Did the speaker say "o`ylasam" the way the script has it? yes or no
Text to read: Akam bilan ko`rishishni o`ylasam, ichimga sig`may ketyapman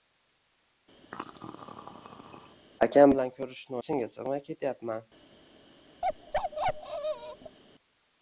no